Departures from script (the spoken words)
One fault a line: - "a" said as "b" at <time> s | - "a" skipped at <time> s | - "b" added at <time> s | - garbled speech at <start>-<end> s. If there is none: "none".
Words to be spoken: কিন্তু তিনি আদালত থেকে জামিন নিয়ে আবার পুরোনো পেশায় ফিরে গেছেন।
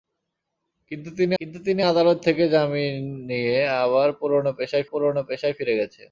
- "কিন্তু তিনি" added at 1.4 s
- "পুরোনো পেশায়" added at 4.9 s